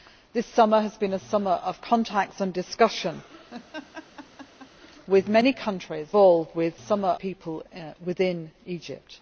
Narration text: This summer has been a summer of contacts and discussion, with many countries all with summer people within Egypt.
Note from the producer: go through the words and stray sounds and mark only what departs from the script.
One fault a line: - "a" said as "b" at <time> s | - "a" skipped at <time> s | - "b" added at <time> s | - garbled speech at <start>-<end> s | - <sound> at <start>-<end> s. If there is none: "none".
- laugh at 3.5-4.7 s